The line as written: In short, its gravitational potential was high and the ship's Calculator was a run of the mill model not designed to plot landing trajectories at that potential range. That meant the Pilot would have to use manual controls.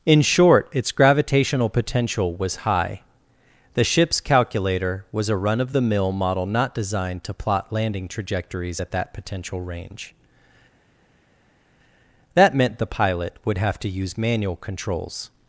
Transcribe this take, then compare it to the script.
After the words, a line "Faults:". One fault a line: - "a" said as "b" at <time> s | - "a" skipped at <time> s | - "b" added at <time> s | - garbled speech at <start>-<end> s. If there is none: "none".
In short, its gravitational potential was high the ship's Calculator was a run of the mill model not designed to plot landing trajectories at that potential range. That meant the Pilot would have to use manual controls.
Faults:
- "and" skipped at 3.0 s